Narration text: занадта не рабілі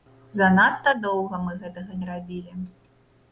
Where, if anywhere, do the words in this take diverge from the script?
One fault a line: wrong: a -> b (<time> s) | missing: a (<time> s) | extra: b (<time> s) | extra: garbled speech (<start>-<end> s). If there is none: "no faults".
extra: доўга мы гэтага (1.0 s)